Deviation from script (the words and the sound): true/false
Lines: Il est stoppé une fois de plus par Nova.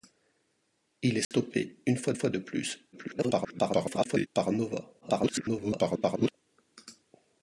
true